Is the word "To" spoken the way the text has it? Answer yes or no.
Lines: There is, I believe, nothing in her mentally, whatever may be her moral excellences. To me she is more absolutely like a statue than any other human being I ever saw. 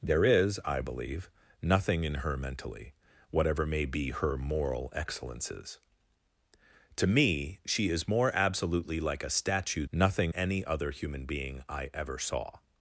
yes